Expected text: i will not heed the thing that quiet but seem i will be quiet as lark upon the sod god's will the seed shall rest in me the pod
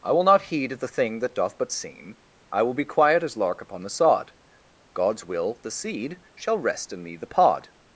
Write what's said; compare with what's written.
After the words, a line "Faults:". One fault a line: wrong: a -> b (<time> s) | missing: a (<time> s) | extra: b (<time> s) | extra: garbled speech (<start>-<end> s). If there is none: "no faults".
i will not heed the thing that doth but seem i will be quiet as lark upon the sod god's will the seed shall rest in me the pod
Faults:
wrong: quiet -> doth (1.4 s)